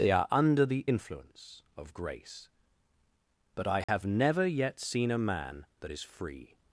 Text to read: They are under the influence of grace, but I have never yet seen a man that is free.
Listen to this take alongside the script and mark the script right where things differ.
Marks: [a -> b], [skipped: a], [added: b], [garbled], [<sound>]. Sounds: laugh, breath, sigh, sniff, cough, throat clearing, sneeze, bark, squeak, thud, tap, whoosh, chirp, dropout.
They are under the influence of grace, but I have [dropout] never yet seen a man that is free.